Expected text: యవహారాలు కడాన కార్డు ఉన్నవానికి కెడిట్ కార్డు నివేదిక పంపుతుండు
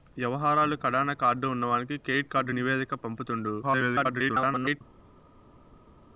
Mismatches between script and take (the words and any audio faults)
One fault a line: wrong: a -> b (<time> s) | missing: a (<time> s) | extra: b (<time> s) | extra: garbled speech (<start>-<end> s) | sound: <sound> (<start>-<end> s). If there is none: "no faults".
extra: garbled speech (3.6-4.8 s)